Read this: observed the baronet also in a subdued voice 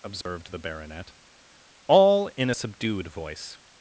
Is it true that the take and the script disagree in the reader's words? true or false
true